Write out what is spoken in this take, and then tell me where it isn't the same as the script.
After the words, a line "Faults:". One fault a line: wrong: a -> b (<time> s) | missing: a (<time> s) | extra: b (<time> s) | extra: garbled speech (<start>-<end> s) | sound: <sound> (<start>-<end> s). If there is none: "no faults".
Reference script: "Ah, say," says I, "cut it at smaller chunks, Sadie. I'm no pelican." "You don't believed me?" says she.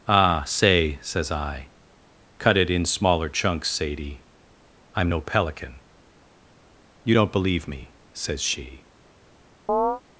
"Ah, say," says I, "cut it in smaller chunks, Sadie. I'm no pelican." "You don't believe me?" says she.
Faults:
wrong: at -> in (2.7 s)
wrong: believed -> believe (7.3 s)
sound: chirp (9.7-10.0 s)